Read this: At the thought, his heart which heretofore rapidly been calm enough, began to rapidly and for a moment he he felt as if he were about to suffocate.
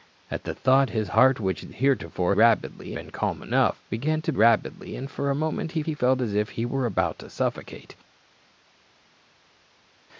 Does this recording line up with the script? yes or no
yes